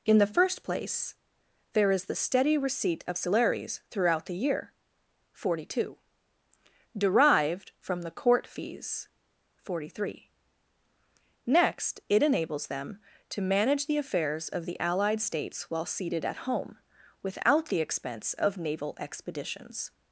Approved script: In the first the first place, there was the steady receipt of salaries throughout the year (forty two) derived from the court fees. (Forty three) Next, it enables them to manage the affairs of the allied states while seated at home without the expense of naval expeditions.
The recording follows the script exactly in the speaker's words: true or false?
false